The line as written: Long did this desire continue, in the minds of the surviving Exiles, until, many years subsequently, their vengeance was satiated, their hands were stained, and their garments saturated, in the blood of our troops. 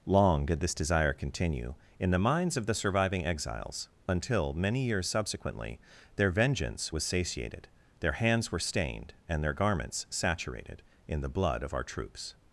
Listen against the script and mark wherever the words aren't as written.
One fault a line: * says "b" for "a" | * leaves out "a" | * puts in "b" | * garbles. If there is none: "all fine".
all fine